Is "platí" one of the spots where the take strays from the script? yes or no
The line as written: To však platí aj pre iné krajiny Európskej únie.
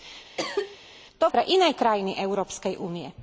yes